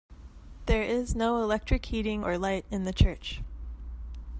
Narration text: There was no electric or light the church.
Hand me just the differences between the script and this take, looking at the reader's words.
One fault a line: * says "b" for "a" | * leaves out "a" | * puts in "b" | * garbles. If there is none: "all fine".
* says "is" for "was"
* puts in "heating"
* puts in "in"